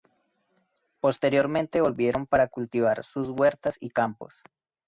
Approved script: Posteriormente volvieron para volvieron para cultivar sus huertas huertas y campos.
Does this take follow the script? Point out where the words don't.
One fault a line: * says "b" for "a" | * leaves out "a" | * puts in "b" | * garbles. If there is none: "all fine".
* leaves out "volvieron para"
* leaves out "huertas"